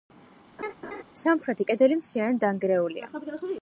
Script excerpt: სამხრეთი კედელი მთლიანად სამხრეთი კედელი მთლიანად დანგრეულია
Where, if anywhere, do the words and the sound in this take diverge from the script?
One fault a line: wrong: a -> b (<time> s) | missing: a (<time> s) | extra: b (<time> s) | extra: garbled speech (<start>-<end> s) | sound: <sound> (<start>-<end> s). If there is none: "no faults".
sound: laugh (0.6-1.0 s)
missing: სამხრეთი კედელი მთლიანად (2.4 s)